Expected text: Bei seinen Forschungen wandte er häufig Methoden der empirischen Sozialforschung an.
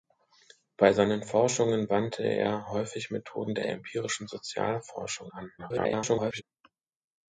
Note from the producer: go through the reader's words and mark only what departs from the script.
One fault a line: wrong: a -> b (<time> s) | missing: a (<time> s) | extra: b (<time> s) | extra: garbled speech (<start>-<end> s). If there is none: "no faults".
extra: der (3.6 s)
extra: garbled speech (5.6-6.4 s)